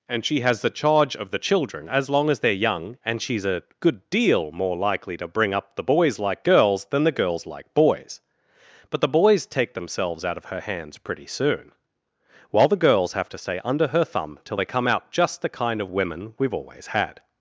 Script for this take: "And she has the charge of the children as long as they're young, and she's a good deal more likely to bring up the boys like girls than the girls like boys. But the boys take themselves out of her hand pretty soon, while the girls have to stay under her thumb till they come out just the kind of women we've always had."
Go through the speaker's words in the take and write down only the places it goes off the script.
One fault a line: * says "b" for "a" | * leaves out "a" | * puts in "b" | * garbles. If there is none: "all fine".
* says "hands" for "hand"